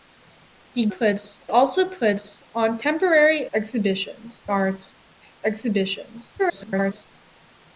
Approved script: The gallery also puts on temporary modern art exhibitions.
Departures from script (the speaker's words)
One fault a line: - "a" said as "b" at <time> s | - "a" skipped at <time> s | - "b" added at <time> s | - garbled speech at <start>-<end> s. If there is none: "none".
- "gallery" said as "puts" at 0.9 s
- "modern" said as "exhibitions" at 3.5 s
- garbled speech at 6.4-7.1 s